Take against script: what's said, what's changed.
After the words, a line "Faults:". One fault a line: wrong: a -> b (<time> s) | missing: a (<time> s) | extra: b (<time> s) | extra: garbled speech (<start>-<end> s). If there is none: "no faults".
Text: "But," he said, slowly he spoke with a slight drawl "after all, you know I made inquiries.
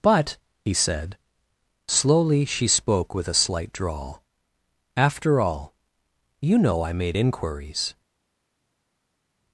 "But," he said, slowly she spoke with a slight drawl "after all, you know I made inquiries.
Faults:
wrong: he -> she (2.5 s)